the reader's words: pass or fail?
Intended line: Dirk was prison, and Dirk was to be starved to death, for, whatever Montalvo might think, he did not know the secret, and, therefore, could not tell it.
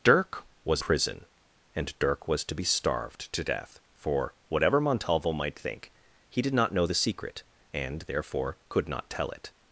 pass